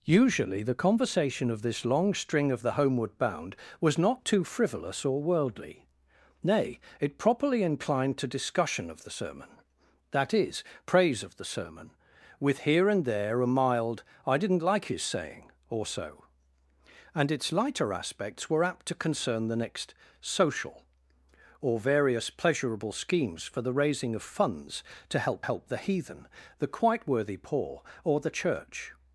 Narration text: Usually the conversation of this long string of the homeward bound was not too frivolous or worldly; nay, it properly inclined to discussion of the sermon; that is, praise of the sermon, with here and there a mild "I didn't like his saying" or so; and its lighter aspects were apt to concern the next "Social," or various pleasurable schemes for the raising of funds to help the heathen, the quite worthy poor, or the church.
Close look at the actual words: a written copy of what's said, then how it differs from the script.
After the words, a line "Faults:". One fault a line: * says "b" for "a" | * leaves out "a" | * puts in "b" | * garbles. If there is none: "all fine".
Usually the conversation of this long string of the homeward bound was not too frivolous or worldly; nay, it properly inclined to discussion of the sermon; that is, praise of the sermon, with here and there a mild "I didn't like his saying" or so; and its lighter aspects were apt to concern the next "Social," or various pleasurable schemes for the raising of funds to help help the heathen, the quite worthy poor, or the church.
Faults:
* puts in "help"